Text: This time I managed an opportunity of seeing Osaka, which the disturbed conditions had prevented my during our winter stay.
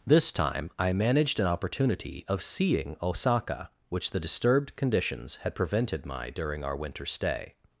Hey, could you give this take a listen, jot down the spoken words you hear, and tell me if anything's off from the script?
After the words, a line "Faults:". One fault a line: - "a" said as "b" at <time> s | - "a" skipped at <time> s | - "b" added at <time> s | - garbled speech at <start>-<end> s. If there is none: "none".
This time I managed an opportunity of seeing Osaka, which the disturbed conditions had prevented my during our winter stay.
Faults:
none